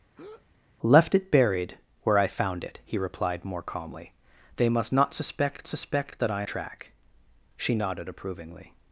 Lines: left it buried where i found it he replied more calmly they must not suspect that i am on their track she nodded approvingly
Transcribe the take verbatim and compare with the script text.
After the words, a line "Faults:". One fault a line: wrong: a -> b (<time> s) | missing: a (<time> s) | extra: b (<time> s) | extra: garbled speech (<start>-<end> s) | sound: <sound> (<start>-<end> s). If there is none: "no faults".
left it buried where i found it he replied more calmly they must not suspect suspect that i track she nodded approvingly
Faults:
sound: breath (0.2-0.5 s)
extra: suspect (5.7 s)
missing: am on their (6.4 s)